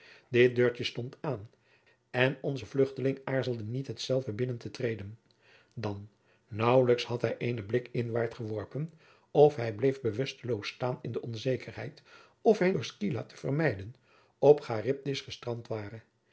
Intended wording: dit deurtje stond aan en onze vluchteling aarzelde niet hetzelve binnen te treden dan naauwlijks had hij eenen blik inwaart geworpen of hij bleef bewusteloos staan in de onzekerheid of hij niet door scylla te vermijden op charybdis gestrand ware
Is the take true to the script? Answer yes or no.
no